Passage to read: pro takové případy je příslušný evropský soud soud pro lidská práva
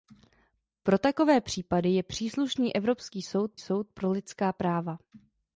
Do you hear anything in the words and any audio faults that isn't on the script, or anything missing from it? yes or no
no